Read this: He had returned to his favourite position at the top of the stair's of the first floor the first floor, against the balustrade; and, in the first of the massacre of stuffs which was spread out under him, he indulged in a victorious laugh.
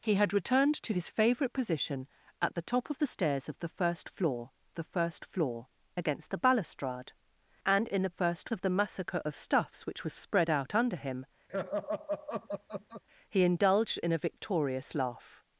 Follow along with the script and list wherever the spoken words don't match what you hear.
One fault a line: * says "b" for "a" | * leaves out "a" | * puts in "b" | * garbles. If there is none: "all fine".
all fine